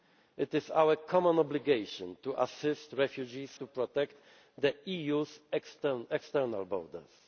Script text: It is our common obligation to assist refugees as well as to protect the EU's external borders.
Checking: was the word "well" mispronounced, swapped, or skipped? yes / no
yes